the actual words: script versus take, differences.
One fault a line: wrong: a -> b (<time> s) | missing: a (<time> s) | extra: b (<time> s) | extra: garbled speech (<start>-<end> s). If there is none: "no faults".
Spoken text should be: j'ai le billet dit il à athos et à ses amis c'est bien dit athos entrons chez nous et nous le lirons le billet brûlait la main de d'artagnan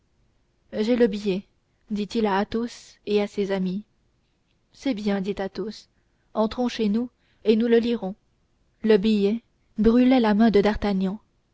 no faults